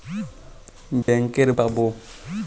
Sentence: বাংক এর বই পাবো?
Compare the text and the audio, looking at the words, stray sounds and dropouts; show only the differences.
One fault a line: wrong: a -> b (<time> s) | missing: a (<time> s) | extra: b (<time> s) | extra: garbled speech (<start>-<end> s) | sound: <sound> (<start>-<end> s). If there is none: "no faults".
sound: dropout (1.0-1.1 s)
missing: বই (1.5 s)